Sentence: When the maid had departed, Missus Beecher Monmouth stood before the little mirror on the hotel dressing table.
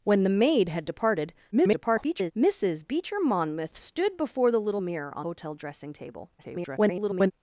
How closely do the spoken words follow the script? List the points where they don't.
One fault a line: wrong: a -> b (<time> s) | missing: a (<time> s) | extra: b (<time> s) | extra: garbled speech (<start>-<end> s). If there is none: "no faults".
extra: garbled speech (1.5-2.3 s)
missing: the (5.3 s)
extra: garbled speech (6.4-7.3 s)